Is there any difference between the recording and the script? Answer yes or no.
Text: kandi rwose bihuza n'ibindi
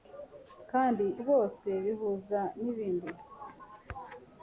no